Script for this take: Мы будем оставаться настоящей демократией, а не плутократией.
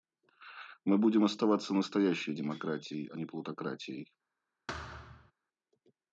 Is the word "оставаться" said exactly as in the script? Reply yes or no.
yes